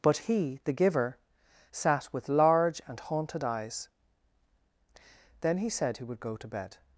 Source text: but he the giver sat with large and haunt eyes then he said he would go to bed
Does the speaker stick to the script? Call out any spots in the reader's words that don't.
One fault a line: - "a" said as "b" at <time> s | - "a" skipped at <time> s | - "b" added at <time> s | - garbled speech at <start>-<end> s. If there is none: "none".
- "haunt" said as "haunted" at 3.0 s